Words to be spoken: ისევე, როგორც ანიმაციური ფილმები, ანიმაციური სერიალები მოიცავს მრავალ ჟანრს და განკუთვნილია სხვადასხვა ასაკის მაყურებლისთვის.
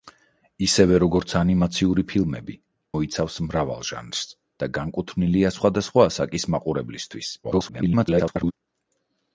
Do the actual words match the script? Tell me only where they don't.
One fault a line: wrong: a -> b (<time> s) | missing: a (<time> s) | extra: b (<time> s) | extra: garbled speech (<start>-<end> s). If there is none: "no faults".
missing: ანიმაციური სერიალები (2.5 s)
extra: garbled speech (7.4-8.5 s)